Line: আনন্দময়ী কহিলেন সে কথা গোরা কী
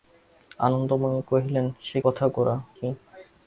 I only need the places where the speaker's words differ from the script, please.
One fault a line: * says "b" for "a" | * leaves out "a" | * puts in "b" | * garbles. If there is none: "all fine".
all fine